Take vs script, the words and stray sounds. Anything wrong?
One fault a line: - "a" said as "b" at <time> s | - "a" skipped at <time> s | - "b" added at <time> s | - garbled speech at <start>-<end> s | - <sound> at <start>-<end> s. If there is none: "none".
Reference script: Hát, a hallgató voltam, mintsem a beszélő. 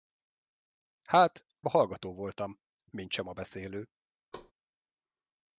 - thud at 4.3-4.5 s